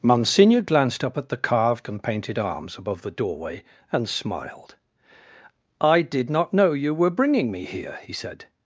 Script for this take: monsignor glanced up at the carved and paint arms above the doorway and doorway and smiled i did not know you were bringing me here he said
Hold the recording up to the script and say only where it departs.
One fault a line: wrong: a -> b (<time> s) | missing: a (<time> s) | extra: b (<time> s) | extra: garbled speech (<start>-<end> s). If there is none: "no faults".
wrong: paint -> painted (2.0 s)
missing: doorway and (4.1 s)